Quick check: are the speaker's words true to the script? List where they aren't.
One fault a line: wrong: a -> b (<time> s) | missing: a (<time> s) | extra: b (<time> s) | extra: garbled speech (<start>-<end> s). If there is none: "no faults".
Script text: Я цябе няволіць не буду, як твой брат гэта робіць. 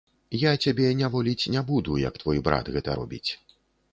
no faults